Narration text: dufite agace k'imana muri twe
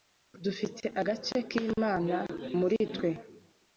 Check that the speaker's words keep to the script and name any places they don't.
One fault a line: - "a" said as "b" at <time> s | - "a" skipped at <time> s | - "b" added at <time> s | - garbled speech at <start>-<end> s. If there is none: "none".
none